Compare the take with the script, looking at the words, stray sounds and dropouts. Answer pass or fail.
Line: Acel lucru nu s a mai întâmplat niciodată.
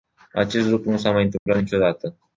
fail